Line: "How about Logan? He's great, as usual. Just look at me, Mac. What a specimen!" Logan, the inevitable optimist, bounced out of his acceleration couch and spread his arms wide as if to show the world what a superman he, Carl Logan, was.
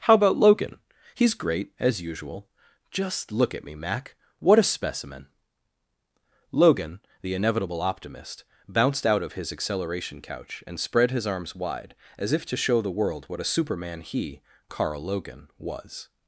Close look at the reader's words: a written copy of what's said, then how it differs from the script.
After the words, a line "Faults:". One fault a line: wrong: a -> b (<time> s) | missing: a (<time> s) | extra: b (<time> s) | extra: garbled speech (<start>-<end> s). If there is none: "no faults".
"How about Logan? He's great, as usual. Just look at me, Mac. What a specimen!" Logan, the inevitable optimist, bounced out of his acceleration couch and spread his arms wide as if to show the world what a superman he, Carl Logan, was.
Faults:
no faults